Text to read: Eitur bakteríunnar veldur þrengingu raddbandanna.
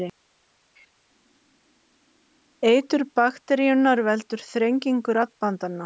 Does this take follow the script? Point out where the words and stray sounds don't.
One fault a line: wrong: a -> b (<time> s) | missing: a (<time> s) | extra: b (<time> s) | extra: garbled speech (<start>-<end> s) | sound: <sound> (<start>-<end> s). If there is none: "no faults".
no faults